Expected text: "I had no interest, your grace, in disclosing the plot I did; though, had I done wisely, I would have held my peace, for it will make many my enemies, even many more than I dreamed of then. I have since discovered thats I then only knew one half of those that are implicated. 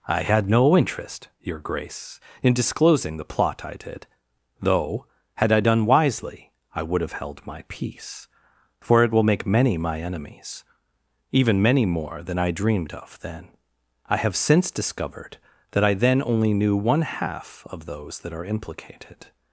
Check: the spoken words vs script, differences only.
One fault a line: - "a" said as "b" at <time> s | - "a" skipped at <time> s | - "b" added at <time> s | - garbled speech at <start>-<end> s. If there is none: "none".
- "thats" said as "that" at 15.7 s